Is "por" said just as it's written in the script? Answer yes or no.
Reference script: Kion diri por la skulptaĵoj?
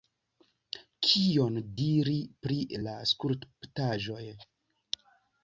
no